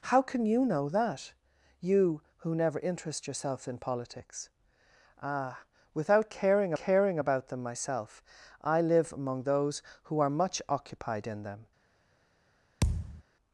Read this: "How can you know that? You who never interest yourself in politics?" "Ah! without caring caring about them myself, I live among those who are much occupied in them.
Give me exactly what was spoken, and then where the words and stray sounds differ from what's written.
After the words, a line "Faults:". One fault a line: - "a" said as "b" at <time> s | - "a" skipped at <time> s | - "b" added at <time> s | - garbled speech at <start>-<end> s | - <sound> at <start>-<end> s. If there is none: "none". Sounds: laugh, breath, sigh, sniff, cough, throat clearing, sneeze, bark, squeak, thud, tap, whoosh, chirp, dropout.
"How can you know that? You who never interest yourself in politics?" "Ah! without caring caring about them myself, I live among those who are much occupied in them.
Faults:
- thud at 12.8-13.2 s